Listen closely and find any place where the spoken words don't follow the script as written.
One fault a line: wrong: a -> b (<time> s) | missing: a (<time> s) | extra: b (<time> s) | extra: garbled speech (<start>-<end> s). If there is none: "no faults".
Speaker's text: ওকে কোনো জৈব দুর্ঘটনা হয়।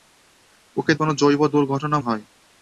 no faults